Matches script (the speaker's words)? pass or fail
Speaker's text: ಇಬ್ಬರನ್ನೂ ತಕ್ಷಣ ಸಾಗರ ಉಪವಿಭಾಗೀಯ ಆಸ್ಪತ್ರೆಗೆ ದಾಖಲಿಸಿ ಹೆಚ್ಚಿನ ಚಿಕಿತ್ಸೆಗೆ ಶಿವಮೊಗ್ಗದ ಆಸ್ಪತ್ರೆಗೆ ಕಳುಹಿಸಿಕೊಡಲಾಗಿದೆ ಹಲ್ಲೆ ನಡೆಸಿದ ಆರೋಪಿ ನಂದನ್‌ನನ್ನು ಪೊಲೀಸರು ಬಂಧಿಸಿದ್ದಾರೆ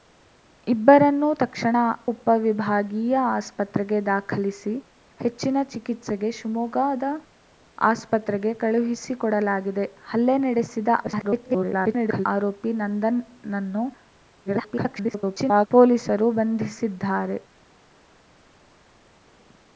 fail